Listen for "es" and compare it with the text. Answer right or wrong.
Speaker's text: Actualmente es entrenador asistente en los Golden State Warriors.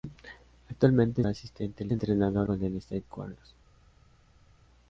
wrong